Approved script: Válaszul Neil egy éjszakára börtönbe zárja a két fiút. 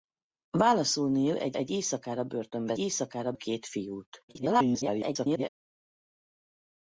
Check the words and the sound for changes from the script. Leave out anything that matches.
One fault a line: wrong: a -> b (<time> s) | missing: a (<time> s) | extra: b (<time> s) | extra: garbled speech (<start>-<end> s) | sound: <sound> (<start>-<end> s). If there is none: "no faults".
extra: egy (1.5 s)
wrong: zárja -> éjszakára (2.8 s)
extra: garbled speech (4.3-5.5 s)